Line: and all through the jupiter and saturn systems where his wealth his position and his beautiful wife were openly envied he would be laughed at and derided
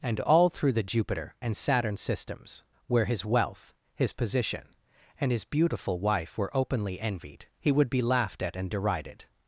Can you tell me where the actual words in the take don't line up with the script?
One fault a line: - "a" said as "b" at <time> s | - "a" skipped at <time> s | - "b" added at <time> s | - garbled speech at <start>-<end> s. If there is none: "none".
none